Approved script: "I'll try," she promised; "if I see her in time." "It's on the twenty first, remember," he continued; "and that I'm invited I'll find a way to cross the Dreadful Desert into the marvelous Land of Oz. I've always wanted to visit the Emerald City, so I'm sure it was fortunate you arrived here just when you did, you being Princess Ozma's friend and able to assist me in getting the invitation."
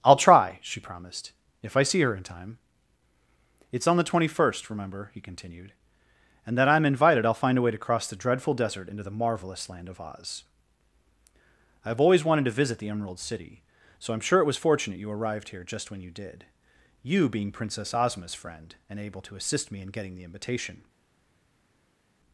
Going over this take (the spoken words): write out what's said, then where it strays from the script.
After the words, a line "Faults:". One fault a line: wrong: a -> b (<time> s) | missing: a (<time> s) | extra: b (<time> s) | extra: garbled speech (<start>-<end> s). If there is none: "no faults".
"I'll try," she promised; "if I see her in time." "It's on the twenty first, remember," he continued; "and that I'm invited I'll find a way to cross the Dreadful Desert into the marvelous Land of Oz. I've always wanted to visit the Emerald City, so I'm sure it was fortunate you arrived here just when you did, you being Princess Ozma's friend and able to assist me in getting the invitation."
Faults:
no faults